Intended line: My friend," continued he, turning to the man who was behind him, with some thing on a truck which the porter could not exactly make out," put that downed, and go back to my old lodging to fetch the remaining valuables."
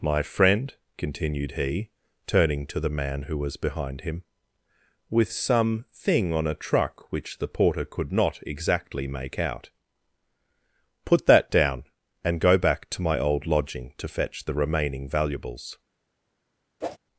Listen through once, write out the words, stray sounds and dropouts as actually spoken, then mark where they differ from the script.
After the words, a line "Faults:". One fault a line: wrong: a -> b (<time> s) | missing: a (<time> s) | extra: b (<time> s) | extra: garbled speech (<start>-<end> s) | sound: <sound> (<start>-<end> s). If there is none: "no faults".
My friend," continued he, turning to the man who was behind him, with some thing on a truck which the porter could not exactly make out," put that down, and go back to my old lodging to fetch the remaining valuables."
Faults:
wrong: downed -> down (11.5 s)
sound: whoosh (16.8-17.0 s)